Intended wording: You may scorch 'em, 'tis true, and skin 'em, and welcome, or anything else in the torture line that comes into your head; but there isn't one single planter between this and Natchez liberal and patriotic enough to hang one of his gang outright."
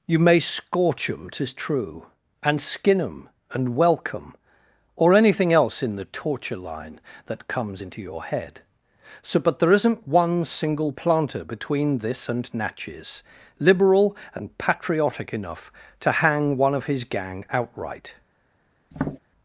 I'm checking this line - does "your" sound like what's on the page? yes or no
yes